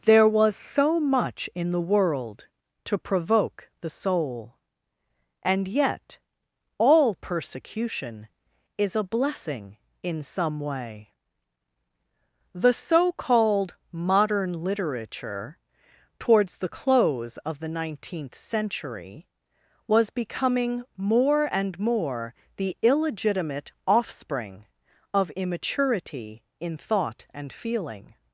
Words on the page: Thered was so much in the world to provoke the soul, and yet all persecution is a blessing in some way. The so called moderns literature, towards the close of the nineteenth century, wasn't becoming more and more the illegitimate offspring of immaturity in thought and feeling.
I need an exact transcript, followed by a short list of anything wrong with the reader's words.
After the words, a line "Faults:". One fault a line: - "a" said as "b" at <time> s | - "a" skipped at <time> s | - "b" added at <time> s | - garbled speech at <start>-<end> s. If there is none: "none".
There was so much in the world to provoke the soul, and yet all persecution is a blessing in some way. The so called modern literature, towards the close of the nineteenth century, was becoming more and more the illegitimate offspring of immaturity in thought and feeling.
Faults:
- "Thered" said as "There" at 0.1 s
- "moderns" said as "modern" at 13.9 s
- "wasn't" said as "was" at 19.9 s